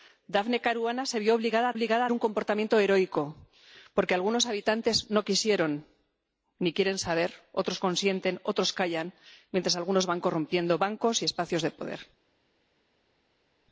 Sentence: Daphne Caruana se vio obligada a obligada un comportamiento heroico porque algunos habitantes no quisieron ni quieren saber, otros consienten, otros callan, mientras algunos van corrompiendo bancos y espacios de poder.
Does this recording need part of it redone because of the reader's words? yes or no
no